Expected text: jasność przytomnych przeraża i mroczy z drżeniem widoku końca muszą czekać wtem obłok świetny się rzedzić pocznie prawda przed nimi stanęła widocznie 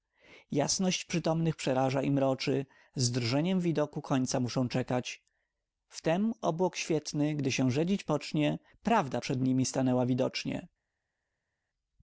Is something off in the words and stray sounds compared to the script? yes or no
yes